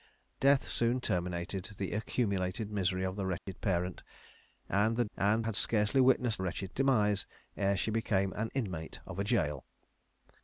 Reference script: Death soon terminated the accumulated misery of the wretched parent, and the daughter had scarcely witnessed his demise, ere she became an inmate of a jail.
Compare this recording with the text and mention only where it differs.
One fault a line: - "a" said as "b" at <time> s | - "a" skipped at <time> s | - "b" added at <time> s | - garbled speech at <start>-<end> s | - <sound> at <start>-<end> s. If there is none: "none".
- dropout at 3.4-3.5 s
- "daughter" said as "and" at 5.1 s
- "his" said as "wretched" at 6.4 s